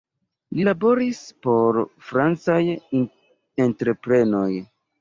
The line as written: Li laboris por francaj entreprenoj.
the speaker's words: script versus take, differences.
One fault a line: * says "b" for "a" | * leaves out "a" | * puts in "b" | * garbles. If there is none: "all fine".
all fine